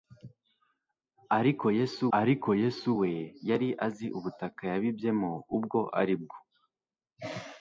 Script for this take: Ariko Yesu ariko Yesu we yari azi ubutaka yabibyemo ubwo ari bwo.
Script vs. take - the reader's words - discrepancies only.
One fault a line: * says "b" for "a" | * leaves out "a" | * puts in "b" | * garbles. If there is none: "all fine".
all fine